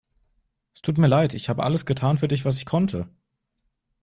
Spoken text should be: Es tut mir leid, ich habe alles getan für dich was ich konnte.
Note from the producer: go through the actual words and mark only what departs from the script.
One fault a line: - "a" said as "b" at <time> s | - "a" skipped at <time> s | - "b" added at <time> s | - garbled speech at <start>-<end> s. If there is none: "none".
none